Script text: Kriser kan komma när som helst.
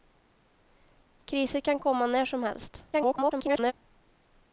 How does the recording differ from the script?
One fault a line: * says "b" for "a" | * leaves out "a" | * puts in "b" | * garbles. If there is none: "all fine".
* garbles